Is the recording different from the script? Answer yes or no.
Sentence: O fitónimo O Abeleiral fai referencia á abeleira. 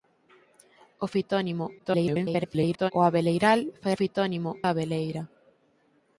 yes